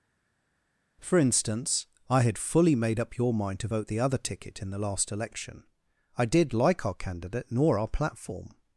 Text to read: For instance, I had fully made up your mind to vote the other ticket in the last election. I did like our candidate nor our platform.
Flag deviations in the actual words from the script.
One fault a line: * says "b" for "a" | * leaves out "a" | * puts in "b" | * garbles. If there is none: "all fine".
all fine